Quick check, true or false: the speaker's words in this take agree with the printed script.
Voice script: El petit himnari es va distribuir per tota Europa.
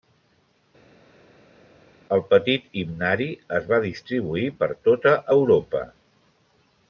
true